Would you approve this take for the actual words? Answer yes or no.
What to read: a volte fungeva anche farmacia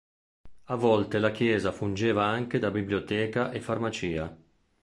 no